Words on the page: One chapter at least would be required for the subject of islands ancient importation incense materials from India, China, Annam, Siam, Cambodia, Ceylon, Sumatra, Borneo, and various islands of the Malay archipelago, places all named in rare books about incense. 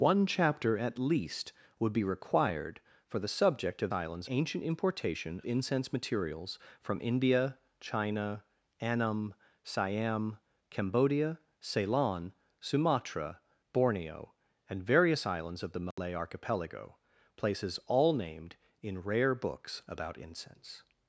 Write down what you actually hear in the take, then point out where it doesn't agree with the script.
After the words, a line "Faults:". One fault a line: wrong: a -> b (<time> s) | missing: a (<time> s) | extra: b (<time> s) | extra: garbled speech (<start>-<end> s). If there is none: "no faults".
One chapter at least would be required for the subject of islands ancient importation incense materials from India, China, Annam, Siam, Cambodia, Ceylon, Sumatra, Borneo, and various islands of the Malay archipelago, places all named in rare books about incense.
Faults:
no faults